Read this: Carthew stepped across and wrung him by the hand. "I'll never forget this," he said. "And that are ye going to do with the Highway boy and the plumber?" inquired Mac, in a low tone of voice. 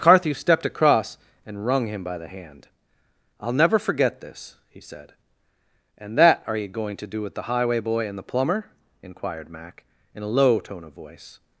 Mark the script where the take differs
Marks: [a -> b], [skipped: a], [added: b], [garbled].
Carthew stepped across and wrung him by the hand. "I'll never forget this," he said. "And that are ye going to do with the Highway boy and the plumber?" inquired Mac, in a low tone of voice.